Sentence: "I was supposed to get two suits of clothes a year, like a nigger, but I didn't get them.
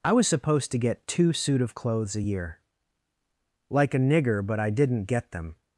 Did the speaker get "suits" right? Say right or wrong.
wrong